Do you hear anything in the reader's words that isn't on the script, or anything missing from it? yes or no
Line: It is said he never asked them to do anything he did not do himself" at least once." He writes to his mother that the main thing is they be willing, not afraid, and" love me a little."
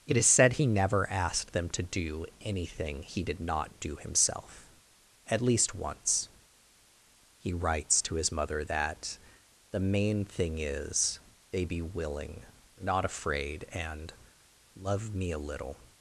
no